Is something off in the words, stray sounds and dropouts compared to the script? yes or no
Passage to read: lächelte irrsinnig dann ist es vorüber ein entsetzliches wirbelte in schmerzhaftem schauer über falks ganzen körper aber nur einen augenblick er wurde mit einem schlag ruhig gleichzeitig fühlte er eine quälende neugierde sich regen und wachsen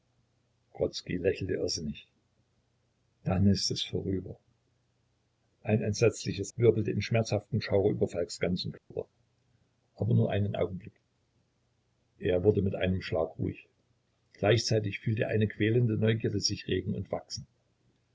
yes